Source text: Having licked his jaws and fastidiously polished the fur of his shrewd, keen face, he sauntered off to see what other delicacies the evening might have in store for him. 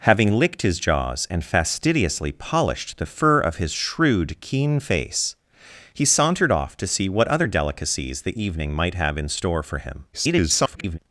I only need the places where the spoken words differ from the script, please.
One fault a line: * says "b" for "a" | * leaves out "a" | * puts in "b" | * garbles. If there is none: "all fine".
* garbles